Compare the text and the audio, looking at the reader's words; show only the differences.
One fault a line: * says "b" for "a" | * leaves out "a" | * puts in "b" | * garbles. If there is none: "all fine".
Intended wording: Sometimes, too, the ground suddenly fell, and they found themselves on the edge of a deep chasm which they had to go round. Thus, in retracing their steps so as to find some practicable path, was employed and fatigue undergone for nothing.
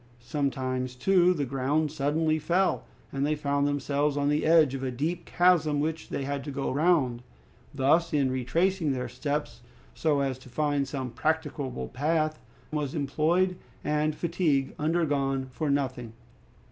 all fine